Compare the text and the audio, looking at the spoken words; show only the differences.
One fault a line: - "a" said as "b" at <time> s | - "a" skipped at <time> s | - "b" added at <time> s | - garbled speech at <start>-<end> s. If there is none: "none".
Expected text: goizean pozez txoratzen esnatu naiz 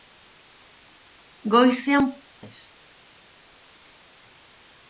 - "pozez txoratzen esnatu" skipped at 2.1 s